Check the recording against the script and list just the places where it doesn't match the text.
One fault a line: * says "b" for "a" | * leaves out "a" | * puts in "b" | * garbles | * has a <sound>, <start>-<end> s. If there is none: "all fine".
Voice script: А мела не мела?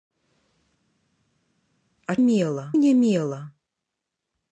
all fine